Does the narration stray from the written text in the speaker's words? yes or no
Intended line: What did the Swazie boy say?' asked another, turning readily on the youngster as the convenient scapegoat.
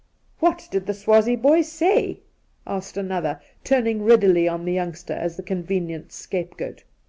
no